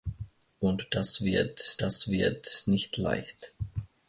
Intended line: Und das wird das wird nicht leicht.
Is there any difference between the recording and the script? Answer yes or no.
no